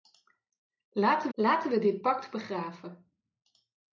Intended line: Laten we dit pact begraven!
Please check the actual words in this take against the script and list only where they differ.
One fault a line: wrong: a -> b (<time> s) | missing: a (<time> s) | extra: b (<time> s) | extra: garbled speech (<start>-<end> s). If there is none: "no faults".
extra: laten (1.3 s)